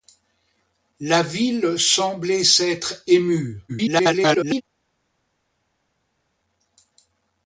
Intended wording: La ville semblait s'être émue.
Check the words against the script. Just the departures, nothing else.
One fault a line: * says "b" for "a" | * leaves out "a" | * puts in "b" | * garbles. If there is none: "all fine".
* garbles